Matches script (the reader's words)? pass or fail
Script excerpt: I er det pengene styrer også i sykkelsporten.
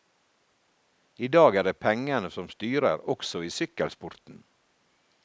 fail